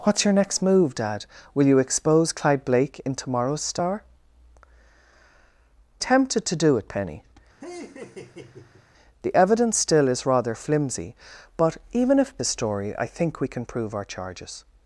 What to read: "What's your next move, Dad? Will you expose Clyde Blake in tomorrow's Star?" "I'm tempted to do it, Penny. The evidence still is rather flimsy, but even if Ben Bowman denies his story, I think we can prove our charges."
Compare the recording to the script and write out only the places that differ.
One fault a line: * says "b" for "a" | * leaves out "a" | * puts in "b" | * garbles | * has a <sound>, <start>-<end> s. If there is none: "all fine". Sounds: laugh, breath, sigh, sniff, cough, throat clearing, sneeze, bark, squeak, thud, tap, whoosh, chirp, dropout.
* leaves out "I'm"
* has a laugh, 7.6-8.9 s
* leaves out "Ben Bowman denies"